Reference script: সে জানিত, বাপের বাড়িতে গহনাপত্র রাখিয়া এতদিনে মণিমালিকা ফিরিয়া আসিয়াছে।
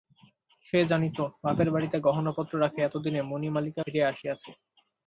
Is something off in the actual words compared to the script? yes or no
no